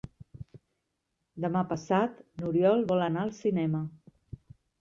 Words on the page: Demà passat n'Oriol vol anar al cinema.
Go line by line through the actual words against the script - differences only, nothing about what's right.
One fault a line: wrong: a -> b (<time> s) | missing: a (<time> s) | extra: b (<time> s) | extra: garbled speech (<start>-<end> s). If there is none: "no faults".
no faults